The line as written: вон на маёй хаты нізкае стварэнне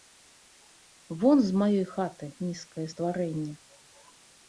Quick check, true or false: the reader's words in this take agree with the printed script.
false